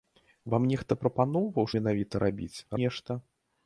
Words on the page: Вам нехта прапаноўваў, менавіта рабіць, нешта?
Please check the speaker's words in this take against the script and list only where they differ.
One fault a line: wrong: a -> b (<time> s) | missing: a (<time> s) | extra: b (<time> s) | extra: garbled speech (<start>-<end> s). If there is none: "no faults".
no faults